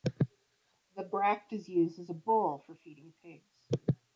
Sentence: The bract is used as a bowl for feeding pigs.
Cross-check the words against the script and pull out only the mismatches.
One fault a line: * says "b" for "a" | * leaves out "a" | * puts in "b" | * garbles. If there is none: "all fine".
all fine